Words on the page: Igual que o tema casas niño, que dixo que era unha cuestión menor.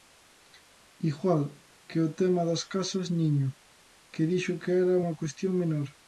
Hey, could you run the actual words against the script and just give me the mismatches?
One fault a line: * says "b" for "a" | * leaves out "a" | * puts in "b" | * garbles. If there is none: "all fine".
* puts in "das"